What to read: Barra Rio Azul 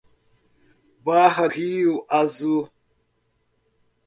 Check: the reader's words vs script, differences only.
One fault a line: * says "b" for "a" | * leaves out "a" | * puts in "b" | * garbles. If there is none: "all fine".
all fine